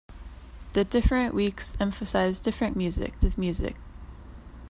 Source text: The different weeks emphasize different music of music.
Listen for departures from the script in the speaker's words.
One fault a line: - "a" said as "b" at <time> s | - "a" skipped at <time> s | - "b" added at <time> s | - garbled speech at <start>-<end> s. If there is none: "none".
none